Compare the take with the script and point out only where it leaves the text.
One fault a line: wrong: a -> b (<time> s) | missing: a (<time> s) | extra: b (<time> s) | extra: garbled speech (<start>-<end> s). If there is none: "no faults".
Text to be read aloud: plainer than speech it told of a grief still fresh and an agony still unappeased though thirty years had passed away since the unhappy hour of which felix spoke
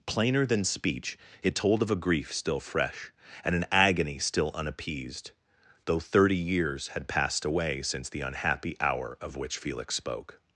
no faults